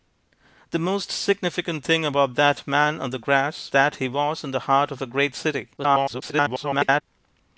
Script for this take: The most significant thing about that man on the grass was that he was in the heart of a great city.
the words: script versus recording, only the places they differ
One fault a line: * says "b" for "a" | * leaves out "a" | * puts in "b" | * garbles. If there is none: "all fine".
* leaves out "was"
* garbles